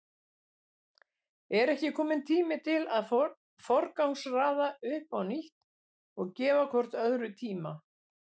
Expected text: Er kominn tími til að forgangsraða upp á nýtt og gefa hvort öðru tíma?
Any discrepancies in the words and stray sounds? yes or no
yes